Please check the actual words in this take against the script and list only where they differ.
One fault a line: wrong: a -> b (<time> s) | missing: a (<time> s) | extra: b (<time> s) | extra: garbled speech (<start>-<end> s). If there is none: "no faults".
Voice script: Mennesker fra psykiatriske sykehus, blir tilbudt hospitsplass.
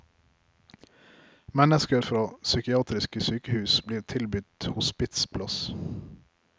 no faults